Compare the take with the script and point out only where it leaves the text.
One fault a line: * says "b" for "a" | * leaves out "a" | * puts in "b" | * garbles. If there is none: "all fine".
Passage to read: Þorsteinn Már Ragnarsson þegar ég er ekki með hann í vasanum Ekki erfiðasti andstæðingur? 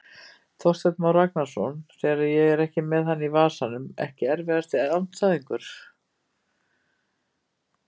all fine